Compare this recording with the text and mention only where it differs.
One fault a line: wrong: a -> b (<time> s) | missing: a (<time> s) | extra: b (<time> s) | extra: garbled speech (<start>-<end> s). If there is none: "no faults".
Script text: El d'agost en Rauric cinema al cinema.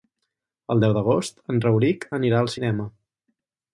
extra: deu (0.8 s)
wrong: cinema -> anirà (2.2 s)